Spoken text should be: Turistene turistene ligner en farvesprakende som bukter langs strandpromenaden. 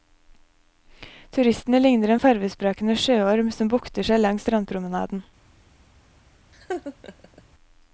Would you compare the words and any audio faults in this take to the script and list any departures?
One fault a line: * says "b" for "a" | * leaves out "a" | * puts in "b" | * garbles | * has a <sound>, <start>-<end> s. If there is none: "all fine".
* leaves out "turistene"
* puts in "sjøorm"
* puts in "seg"
* has a laugh, 6.5-7.4 s